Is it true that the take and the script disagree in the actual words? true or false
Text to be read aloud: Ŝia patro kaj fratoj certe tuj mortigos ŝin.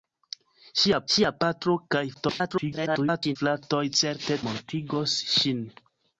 true